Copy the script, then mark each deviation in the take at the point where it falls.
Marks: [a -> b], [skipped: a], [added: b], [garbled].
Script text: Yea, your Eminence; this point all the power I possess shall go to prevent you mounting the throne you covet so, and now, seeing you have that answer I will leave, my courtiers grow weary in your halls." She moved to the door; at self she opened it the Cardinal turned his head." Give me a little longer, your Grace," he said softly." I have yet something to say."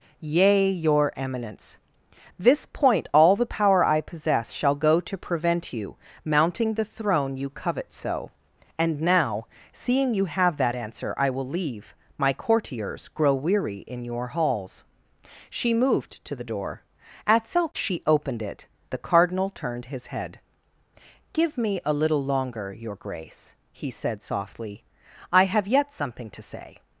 Yea, your Eminence; this point all the power I possess shall go to prevent you mounting the throne you covet so, and now, seeing you have that answer I will leave, my courtiers grow weary in your halls." She moved to the door; at self she opened it the Cardinal turned his head." Give me a little longer, your Grace," he said softly." I have yet something to say."